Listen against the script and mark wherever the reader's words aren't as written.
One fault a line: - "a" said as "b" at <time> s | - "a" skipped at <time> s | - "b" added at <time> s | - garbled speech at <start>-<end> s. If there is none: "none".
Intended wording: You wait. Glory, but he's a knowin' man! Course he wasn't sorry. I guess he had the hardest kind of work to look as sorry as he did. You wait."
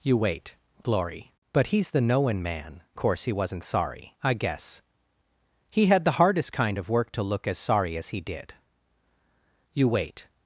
- "a" said as "the" at 1.9 s